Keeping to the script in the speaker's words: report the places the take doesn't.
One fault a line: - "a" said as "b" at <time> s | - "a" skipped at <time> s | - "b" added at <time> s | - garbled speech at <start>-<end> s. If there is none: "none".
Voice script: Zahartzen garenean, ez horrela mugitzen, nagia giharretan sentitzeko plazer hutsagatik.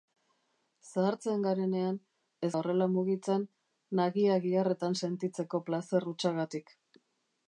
none